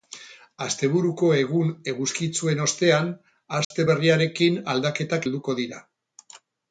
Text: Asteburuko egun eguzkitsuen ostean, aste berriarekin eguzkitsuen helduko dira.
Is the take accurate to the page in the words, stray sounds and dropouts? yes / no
no